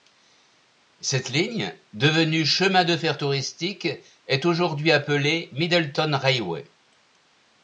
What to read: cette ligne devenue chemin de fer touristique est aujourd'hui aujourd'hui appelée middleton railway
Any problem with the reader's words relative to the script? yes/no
yes